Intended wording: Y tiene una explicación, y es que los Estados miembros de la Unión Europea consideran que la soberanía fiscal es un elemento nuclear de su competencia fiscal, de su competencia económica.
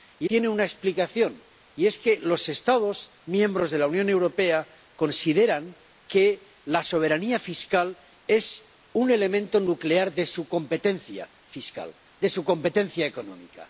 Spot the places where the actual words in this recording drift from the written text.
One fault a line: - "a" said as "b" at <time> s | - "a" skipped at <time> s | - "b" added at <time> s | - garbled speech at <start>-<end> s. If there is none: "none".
none